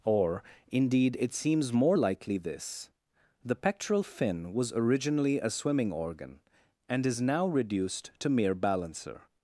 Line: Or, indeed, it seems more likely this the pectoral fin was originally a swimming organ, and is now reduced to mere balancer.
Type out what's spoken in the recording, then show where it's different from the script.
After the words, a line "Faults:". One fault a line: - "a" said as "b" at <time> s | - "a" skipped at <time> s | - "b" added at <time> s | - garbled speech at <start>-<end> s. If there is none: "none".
Or, indeed, it seems more likely this the pectoral fin was originally a swimming organ, and is now reduced to mere balancer.
Faults:
none